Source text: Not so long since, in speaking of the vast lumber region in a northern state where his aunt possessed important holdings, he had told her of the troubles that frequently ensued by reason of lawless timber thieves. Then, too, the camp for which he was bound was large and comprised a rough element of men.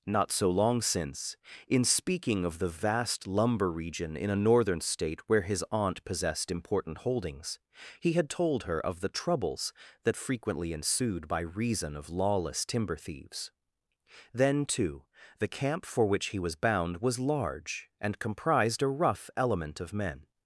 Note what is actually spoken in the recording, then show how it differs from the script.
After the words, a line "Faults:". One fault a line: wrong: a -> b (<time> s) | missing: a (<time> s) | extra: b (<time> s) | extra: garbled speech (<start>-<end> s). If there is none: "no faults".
Not so long since, in speaking of the vast lumber region in a northern state where his aunt possessed important holdings, he had told her of the troubles that frequently ensued by reason of lawless timber thieves. Then, too, the camp for which he was bound was large and comprised a rough element of men.
Faults:
no faults